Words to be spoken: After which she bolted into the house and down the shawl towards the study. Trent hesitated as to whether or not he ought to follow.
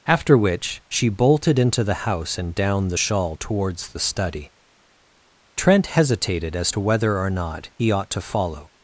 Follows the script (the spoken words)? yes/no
yes